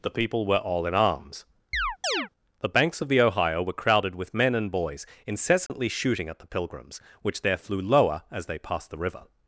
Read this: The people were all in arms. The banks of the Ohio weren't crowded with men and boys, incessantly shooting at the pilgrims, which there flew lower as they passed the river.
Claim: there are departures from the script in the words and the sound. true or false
true